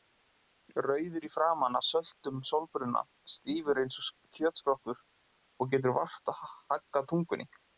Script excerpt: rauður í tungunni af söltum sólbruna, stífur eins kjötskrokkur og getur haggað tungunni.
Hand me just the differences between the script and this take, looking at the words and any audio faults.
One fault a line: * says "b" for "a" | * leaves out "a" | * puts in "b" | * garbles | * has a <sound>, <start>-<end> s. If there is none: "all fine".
* says "framan" for "tungunni"
* puts in "og"
* puts in "vart"